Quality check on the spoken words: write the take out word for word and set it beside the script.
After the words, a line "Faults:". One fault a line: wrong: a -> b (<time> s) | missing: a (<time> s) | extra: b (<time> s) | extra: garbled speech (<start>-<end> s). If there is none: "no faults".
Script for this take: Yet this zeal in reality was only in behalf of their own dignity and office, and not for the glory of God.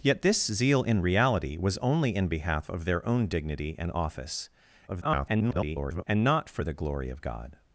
Yet this zeal in reality was only in behalf of their own dignity and office, [garbled] and not for the glory of God.
Faults:
extra: garbled speech (4.9-6.0 s)